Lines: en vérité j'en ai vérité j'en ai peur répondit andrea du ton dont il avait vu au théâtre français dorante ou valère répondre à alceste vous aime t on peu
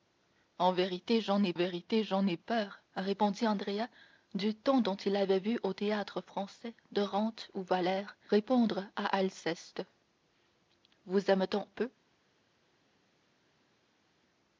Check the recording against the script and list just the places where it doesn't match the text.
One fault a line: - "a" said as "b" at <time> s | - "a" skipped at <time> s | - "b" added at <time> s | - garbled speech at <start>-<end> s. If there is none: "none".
none